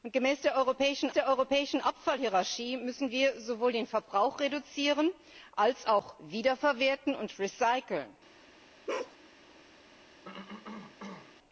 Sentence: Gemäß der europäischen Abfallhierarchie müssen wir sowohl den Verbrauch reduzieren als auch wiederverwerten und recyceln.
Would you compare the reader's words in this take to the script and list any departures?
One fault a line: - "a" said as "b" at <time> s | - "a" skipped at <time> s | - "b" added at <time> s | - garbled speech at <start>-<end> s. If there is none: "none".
- "der europäischen" added at 1.1 s